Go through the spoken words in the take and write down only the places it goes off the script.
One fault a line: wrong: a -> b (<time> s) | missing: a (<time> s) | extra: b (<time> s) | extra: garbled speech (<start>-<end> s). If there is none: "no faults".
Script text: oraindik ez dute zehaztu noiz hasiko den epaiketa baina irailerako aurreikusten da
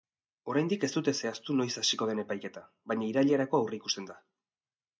no faults